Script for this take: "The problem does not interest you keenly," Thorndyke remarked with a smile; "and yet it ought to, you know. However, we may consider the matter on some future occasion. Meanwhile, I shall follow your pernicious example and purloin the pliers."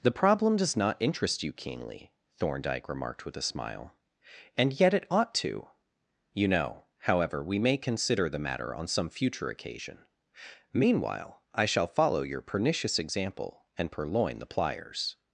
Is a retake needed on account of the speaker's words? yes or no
no